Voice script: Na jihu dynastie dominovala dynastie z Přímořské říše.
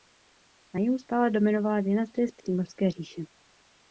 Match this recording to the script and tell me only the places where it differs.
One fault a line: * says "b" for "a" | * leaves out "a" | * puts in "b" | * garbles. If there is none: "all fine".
* says "stále" for "dynastie"